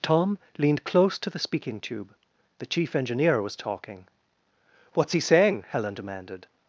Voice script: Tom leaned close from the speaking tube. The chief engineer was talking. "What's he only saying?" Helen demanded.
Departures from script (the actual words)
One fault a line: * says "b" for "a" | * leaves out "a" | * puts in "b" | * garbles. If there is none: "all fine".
* says "to" for "from"
* leaves out "only"